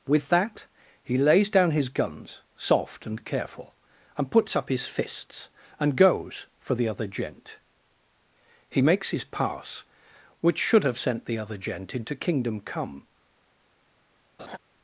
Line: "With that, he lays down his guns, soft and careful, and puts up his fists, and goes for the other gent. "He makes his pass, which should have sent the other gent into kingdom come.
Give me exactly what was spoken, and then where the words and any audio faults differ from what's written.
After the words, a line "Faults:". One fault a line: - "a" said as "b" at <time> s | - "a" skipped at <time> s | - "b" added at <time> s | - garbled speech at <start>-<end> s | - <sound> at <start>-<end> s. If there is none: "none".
"With that, he lays down his guns, soft and careful, and puts up his fists, and goes for the other gent. "He makes his pass, which should have sent the other gent into kingdom come.
Faults:
- laugh at 14.4-14.6 s